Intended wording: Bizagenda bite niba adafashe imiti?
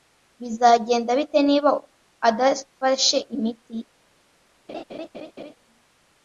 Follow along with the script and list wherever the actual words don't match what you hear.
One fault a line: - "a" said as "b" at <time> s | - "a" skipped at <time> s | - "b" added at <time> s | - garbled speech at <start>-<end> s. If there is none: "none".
none